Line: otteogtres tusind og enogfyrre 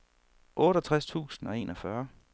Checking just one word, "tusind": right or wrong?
right